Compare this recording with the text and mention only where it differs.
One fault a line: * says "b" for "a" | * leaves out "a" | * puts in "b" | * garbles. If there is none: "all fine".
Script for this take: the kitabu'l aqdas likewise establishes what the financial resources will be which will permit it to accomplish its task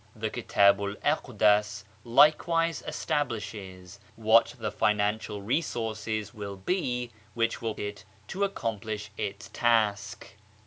* leaves out "permit"